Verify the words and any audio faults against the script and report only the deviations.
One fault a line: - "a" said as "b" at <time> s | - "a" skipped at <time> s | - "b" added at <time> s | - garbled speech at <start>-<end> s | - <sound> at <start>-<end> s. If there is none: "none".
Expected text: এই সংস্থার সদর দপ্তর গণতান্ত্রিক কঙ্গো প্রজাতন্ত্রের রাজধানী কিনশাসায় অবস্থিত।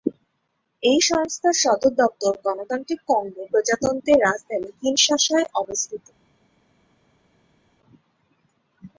none